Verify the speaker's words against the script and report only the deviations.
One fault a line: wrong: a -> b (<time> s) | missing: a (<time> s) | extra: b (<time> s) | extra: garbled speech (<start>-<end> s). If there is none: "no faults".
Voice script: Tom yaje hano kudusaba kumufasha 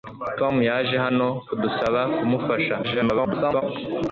extra: garbled speech (2.8-3.6 s)